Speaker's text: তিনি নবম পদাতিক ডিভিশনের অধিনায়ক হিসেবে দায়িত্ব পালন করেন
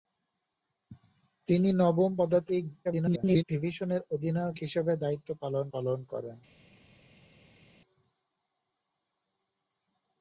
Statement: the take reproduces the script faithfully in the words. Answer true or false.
false